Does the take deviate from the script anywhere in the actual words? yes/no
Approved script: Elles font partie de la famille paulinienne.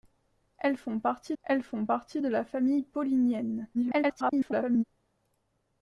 yes